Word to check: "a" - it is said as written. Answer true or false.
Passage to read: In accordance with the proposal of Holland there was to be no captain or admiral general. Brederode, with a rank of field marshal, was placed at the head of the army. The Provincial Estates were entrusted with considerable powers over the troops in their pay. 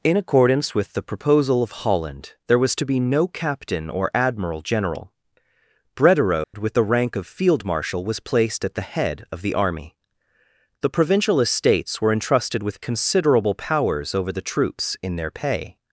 false